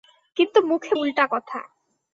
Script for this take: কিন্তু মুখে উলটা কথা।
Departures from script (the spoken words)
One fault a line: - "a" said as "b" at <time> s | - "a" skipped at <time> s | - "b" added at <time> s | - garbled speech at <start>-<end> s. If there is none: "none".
none